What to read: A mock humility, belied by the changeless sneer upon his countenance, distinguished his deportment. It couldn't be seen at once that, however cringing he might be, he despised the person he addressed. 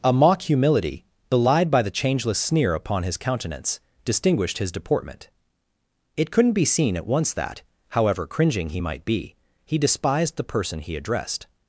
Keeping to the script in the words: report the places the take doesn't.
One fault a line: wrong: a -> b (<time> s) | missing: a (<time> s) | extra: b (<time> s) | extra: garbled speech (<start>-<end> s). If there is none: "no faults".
no faults